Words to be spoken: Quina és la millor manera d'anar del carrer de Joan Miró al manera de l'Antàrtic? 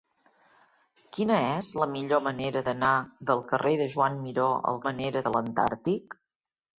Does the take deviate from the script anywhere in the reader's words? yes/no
no